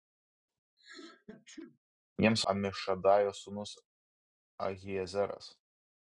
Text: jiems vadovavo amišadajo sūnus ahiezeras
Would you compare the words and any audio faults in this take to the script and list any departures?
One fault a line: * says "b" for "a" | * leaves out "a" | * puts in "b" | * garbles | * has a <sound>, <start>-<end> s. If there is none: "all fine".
* has a sneeze, 0.8-1.8 s
* leaves out "vadovavo"